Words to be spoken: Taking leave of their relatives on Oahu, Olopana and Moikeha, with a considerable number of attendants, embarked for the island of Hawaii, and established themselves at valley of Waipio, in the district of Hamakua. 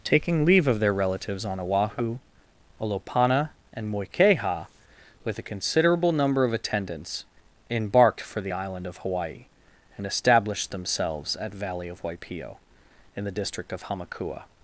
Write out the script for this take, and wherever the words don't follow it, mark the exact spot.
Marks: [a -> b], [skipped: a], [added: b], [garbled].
Taking leave of their relatives on Oahu, Olopana and Moikeha, with a considerable number of attendants, embarked for the island of Hawaii, and established themselves at valley of Waipio, in the district of Hamakua.